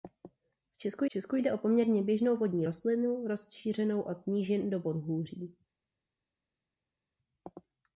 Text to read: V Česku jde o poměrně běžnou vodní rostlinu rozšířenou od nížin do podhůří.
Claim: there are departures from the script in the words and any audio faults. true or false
true